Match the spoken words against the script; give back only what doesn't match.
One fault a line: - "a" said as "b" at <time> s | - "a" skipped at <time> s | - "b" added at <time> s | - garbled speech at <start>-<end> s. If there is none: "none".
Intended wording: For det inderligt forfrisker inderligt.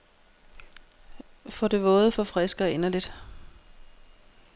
- "inderligt" said as "våde" at 1.8 s